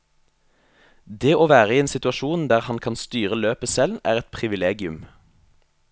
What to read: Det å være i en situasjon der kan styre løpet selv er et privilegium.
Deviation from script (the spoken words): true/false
true